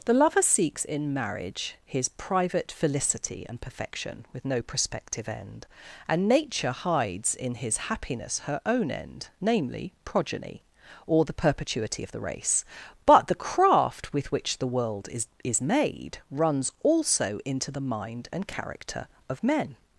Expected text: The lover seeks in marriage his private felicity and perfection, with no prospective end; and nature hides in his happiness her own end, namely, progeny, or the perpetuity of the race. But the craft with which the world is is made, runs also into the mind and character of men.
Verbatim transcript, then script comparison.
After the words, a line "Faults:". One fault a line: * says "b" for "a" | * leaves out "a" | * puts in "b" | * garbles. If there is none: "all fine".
The lover seeks in marriage his private felicity and perfection, with no prospective end; and nature hides in his happiness her own end, namely, progeny, or the perpetuity of the race. But the craft with which the world is is made, runs also into the mind and character of men.
Faults:
all fine